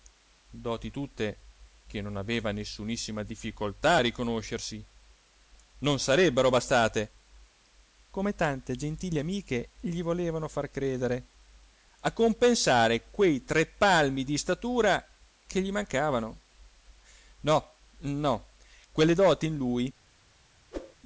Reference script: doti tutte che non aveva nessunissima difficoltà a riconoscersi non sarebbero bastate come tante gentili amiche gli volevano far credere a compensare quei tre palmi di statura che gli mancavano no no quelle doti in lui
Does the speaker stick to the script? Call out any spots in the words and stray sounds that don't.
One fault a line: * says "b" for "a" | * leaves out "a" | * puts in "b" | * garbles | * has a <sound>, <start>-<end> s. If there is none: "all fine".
* has a whoosh, 20.7-21.0 s